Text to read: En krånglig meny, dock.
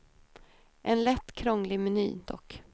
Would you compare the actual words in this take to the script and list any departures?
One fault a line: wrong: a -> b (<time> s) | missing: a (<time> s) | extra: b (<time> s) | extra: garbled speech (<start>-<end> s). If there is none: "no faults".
extra: lätt (1.0 s)